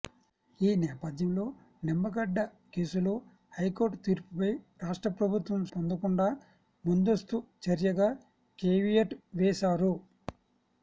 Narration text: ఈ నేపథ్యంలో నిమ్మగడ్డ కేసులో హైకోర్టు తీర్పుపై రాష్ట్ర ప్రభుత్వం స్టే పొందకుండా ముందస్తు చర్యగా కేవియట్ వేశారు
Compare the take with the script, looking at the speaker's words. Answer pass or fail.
fail